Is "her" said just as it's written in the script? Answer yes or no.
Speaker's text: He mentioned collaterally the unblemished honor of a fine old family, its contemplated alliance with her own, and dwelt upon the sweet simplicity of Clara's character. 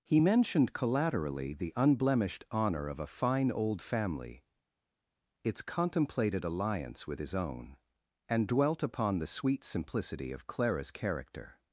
no